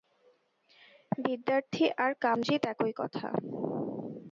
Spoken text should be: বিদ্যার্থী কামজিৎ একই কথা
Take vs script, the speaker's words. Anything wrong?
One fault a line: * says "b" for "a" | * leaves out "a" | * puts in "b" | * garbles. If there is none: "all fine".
* puts in "আর"